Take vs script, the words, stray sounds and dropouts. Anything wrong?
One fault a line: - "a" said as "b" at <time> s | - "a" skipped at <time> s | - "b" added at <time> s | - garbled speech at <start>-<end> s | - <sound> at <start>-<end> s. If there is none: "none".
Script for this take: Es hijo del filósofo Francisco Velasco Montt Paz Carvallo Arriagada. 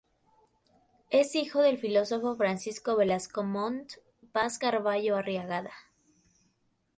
none